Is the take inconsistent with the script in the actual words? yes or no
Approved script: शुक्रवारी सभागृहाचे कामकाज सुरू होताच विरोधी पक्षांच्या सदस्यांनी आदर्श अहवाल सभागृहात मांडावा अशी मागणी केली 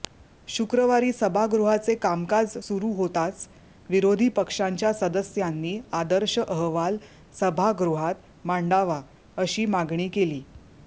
no